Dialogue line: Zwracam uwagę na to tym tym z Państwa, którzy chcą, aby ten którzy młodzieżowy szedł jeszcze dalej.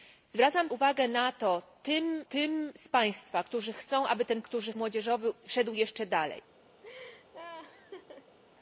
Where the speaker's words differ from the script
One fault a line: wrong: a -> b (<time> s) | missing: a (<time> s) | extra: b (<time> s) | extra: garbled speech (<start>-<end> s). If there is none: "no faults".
no faults